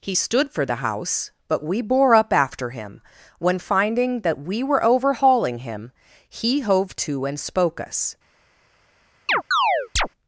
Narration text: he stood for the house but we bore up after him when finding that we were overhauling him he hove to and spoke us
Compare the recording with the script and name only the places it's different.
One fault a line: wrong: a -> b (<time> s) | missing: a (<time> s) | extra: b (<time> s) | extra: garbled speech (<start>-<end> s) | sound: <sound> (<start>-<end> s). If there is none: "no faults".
sound: chirp (9.3-10.1 s)